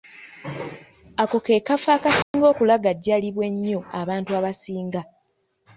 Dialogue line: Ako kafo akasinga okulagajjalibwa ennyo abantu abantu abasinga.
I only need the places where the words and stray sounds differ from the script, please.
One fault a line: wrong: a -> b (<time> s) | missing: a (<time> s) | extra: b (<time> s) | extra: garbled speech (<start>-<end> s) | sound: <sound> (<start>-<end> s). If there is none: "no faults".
extra: ke (1.4 s)
sound: dropout (2.2-2.3 s)
missing: abantu (4.3 s)